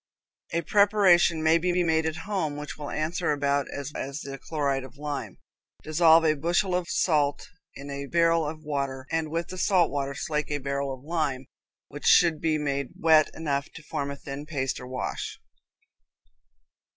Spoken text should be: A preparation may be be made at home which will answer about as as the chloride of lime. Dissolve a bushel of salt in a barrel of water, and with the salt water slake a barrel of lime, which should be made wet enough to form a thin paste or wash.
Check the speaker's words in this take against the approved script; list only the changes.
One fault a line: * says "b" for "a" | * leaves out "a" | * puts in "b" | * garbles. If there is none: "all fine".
all fine